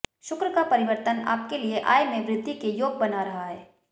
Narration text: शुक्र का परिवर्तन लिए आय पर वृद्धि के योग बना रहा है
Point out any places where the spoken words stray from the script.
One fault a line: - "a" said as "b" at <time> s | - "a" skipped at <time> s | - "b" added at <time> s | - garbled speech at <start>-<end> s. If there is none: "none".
- "आपके" added at 1.3 s
- "पर" said as "में" at 2.0 s